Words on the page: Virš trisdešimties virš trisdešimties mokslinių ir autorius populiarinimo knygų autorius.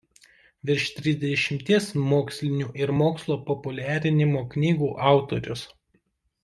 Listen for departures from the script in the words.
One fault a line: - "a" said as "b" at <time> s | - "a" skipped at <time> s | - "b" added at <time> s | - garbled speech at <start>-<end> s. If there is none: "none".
- "virš trisdešimties" skipped at 1.9 s
- "autorius" said as "mokslo" at 3.0 s